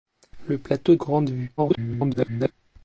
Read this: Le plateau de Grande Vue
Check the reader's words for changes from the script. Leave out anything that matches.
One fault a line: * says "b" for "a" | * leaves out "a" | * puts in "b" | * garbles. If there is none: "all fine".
* leaves out "de"
* garbles